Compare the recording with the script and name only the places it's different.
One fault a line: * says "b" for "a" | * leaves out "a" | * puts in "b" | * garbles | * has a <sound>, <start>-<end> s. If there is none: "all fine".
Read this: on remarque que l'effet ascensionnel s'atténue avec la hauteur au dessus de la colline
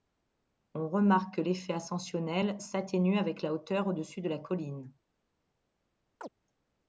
* has a chirp, 6.2-6.3 s